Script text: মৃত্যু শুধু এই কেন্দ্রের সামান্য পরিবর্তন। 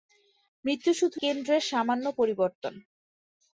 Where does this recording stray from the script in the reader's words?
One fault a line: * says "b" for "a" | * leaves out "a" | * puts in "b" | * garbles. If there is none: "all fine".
* leaves out "এই"